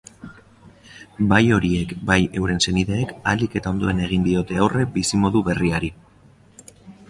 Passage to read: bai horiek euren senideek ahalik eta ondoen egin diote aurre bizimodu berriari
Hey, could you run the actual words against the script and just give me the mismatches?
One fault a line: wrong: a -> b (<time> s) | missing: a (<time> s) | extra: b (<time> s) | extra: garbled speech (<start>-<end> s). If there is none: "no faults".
extra: bai (2.1 s)